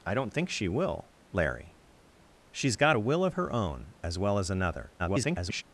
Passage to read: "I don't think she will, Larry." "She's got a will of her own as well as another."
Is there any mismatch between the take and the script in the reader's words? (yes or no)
yes